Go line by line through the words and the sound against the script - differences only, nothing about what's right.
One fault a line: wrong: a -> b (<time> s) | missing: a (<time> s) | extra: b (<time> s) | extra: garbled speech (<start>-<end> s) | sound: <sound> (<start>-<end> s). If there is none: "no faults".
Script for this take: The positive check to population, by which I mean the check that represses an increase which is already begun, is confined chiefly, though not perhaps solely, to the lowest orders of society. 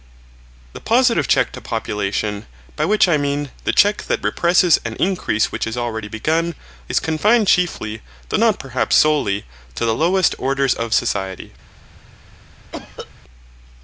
sound: cough (12.7-13.1 s)